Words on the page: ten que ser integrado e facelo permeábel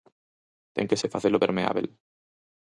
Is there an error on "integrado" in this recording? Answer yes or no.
yes